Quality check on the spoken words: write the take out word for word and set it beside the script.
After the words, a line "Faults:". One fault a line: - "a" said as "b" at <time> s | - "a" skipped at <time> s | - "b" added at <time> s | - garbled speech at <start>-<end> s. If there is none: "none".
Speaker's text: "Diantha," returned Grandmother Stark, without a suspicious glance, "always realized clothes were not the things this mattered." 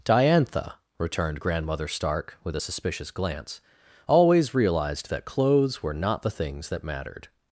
"Diantha," returned Grandmother Stark, with a suspicious glance, "always realized that clothes were not the things that mattered."
Faults:
- "without" said as "with" at 2.4 s
- "that" added at 5.1 s
- "this" said as "that" at 6.7 s